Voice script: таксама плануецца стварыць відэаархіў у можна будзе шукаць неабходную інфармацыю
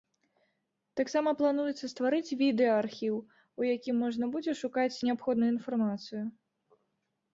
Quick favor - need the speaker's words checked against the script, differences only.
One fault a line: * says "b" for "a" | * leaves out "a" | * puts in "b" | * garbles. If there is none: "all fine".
* puts in "якім"